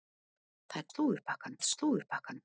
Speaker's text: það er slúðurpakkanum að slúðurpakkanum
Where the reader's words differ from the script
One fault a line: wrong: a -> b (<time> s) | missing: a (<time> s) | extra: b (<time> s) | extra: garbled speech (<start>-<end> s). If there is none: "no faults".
no faults